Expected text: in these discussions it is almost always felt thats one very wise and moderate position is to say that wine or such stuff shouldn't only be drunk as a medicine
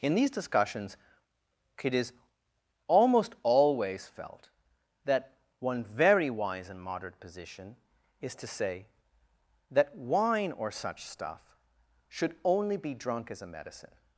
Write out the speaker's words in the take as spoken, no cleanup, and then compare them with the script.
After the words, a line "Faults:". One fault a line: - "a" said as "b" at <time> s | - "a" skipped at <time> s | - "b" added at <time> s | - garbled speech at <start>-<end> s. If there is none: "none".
in these discussions it is almost always felt that one very wise and moderate position is to say that wine or such stuff should only be drunk as a medicine
Faults:
- "thats" said as "that" at 5.0 s
- "shouldn't" said as "should" at 12.1 s